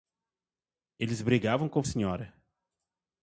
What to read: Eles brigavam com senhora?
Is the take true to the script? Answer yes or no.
yes